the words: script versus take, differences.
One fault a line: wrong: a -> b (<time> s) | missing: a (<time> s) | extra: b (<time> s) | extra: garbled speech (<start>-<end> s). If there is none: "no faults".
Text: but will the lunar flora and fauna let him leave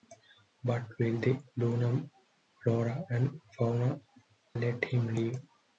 no faults